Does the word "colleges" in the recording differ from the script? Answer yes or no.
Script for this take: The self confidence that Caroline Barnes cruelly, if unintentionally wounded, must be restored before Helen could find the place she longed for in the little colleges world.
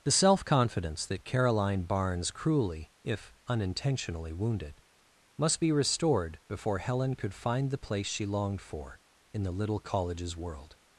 no